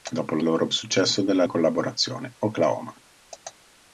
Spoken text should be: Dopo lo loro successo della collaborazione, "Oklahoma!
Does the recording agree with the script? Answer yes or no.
yes